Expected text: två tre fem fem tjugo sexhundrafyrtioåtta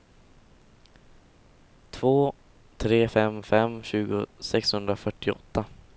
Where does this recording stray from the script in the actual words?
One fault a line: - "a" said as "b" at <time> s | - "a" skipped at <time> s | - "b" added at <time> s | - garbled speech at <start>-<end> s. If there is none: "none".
none